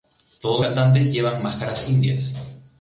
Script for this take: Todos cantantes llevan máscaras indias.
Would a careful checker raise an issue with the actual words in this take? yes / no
no